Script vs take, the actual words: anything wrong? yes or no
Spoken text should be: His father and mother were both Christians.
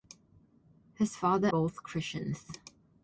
yes